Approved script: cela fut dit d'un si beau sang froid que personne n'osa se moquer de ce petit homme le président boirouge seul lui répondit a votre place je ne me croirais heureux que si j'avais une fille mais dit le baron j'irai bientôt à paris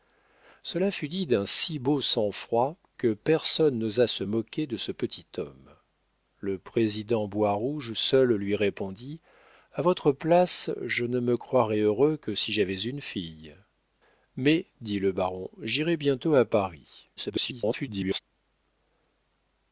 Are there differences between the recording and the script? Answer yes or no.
yes